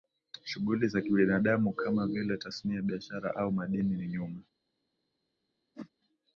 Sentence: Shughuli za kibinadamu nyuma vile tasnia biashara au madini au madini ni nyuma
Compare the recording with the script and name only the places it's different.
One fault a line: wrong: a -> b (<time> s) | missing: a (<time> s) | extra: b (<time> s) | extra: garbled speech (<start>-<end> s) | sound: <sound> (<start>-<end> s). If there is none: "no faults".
wrong: nyuma -> kama (1.7 s)
missing: au madini (4.0 s)
sound: whoosh (5.7-5.9 s)